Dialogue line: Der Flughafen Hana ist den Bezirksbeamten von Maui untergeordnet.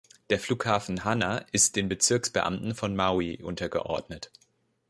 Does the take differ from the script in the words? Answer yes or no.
no